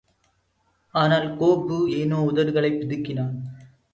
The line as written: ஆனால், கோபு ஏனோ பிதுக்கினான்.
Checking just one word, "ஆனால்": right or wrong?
right